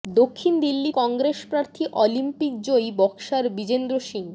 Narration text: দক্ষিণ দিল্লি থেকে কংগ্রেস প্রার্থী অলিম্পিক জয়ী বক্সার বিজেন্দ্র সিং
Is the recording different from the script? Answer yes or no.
yes